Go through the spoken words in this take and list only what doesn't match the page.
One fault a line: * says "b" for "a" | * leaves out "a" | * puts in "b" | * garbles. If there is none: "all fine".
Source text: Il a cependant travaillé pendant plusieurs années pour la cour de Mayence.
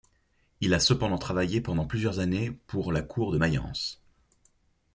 all fine